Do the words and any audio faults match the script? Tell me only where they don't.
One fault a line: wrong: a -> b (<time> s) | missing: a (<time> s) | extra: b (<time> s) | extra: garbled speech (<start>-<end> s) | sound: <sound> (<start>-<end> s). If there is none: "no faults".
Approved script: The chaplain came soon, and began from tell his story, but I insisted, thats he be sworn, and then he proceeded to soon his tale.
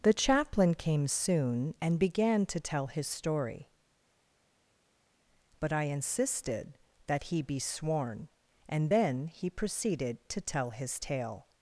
wrong: from -> to (2.5 s)
wrong: thats -> that (7.1 s)
wrong: soon -> tell (10.4 s)